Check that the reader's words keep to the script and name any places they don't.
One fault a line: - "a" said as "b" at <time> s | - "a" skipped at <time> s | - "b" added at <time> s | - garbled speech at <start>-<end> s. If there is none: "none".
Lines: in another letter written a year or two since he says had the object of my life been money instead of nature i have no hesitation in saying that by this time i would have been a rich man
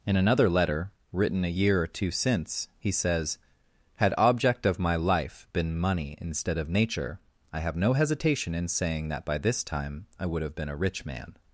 - "the" skipped at 4.1 s